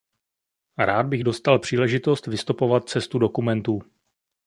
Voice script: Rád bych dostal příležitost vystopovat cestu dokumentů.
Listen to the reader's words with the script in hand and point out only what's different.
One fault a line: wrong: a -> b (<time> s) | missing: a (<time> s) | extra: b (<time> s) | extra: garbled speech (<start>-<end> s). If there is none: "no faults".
no faults